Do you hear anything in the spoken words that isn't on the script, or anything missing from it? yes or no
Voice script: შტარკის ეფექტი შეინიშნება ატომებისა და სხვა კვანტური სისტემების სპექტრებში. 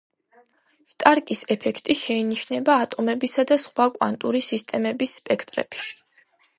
no